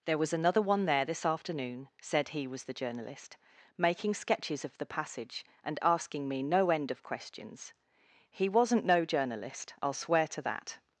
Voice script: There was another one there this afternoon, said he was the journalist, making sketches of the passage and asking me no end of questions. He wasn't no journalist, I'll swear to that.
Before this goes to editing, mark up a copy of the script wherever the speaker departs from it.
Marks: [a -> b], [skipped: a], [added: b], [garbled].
There was another one there this afternoon, said he was the journalist, making sketches of the passage and asking me no end of questions. He wasn't no journalist, I'll swear to that.